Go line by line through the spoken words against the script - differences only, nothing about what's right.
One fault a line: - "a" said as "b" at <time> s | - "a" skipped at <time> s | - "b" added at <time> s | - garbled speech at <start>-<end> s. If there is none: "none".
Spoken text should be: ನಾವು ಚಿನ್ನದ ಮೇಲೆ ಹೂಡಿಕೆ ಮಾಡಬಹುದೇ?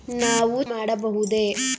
- "ಚಿನ್ನದ ಮೇಲೆ ಹೂಡಿಕೆ" skipped at 0.6 s